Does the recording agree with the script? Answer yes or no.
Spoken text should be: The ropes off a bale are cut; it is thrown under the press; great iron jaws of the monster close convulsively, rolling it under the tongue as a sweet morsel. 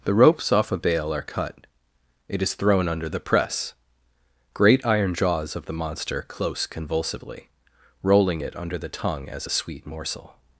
yes